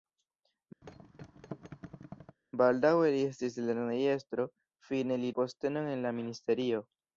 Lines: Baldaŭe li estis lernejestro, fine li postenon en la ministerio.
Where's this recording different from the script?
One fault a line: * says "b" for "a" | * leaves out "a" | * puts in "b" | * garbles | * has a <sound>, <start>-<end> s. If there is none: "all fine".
* has a thud, 0.8-2.4 s